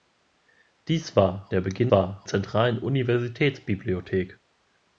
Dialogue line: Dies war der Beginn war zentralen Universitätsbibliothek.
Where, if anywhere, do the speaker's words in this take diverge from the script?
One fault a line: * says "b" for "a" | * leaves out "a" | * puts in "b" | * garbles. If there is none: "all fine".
all fine